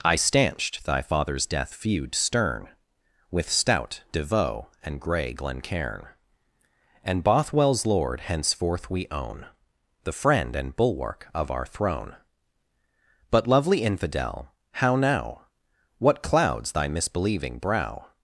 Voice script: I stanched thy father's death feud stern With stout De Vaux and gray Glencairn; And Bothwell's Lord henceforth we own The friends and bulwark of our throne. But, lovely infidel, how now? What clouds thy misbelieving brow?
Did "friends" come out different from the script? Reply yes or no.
yes